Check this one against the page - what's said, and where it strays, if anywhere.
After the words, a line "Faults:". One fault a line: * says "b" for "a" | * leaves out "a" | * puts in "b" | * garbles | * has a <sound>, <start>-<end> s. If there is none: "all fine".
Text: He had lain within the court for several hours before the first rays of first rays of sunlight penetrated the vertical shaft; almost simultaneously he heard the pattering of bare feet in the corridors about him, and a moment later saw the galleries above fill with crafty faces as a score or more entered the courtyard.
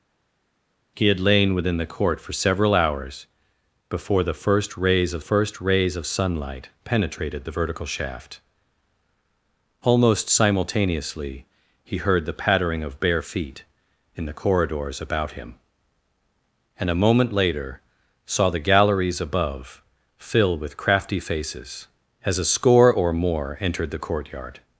He had lain within the court for several hours before the first rays of first rays of sunlight penetrated the vertical shaft; almost simultaneously he heard the pattering of bare feet in the corridors about him, and a moment later saw the galleries above fill with crafty faces as a score or more entered the courtyard.
Faults:
all fine